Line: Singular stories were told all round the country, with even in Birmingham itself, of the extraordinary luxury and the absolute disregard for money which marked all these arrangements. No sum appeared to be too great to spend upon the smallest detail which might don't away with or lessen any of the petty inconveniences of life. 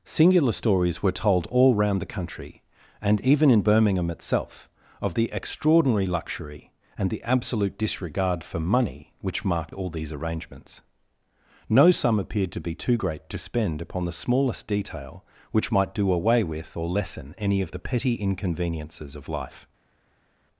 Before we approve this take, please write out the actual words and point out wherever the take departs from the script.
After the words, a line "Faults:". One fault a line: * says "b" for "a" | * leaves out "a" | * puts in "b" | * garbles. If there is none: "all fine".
Singular stories were told all round the country, and even in Birmingham itself, of the extraordinary luxury and the absolute disregard for money which marked all these arrangements. No sum appeared to be too great to spend upon the smallest detail which might do away with or lessen any of the petty inconveniences of life.
Faults:
* says "and" for "with"
* says "do" for "don't"